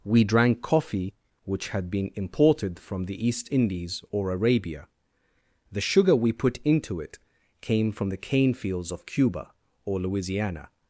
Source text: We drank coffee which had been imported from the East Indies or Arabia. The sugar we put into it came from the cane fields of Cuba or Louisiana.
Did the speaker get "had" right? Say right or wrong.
right